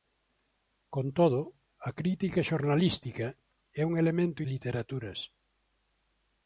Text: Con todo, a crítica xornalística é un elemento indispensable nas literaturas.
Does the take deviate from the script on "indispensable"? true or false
true